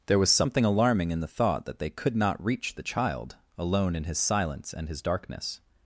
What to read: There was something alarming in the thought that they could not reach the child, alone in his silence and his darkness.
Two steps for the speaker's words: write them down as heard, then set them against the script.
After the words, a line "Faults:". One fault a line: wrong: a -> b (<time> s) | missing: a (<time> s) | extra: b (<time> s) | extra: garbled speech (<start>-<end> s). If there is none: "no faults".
There was something alarming in the thought that they could not reach the child, alone in his silence and his darkness.
Faults:
no faults